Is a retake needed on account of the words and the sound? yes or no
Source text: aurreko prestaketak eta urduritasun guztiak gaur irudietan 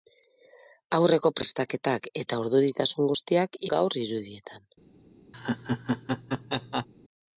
yes